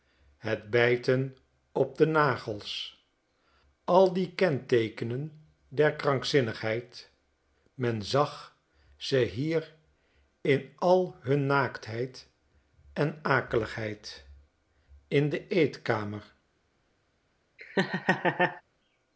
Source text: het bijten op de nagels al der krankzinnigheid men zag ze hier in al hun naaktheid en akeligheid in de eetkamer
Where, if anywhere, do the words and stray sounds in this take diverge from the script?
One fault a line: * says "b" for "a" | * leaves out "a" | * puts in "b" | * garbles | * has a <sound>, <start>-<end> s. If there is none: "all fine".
* puts in "die kenteekenen"
* has a laugh, 17.6-18.6 s